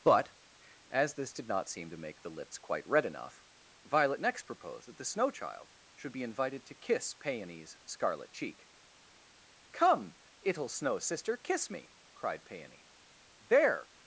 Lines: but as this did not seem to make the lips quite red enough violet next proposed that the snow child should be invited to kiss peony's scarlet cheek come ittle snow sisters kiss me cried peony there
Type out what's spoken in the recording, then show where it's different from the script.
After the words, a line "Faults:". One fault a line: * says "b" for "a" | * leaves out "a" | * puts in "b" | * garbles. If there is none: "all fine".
but as this did not seem to make the lips quite red enough violet next proposed that the snow child should be invited to kiss peony's scarlet cheek come ittle snow sister kiss me cried peony there
Faults:
* says "sister" for "sisters"